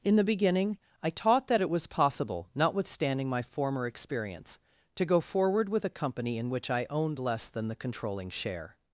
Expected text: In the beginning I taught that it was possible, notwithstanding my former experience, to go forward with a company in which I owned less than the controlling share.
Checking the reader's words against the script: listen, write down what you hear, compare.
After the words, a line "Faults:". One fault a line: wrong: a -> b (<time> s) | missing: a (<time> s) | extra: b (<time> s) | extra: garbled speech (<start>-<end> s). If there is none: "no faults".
In the beginning I taught that it was possible, notwithstanding my former experience, to go forward with a company in which I owned less than the controlling share.
Faults:
no faults